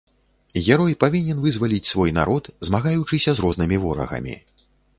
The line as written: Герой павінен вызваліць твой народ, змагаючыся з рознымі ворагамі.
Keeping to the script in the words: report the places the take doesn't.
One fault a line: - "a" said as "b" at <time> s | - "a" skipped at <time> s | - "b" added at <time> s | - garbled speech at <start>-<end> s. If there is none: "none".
- "твой" said as "свой" at 1.9 s